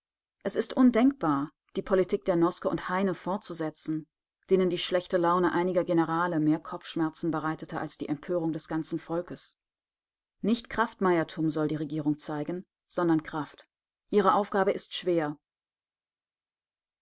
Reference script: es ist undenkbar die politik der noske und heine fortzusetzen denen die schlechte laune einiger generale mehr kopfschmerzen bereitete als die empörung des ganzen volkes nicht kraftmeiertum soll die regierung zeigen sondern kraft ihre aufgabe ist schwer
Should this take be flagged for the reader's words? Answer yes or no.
no